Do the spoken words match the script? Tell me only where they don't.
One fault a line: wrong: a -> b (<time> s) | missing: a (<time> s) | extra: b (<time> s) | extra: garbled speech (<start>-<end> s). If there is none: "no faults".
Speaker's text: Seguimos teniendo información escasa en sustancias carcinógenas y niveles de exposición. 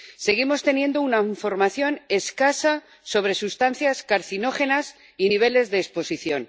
extra: una (1.0 s)
wrong: en -> sobre (3.0 s)